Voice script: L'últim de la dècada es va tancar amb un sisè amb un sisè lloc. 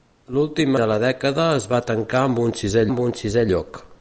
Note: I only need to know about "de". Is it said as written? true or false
true